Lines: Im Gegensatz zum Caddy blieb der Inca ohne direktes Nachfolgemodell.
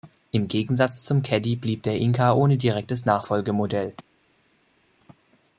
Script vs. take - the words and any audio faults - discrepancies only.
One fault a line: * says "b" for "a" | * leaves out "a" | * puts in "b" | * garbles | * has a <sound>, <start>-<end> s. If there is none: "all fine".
all fine